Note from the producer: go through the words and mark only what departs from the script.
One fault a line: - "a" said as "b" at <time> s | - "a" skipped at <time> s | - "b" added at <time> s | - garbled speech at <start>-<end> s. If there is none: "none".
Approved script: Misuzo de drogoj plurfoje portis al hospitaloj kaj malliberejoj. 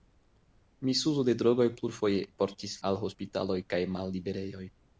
none